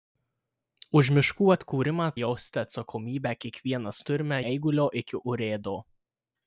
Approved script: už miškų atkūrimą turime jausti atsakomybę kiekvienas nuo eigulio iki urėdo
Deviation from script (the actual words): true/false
true